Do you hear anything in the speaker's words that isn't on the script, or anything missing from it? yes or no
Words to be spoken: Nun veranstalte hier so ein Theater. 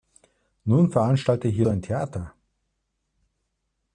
no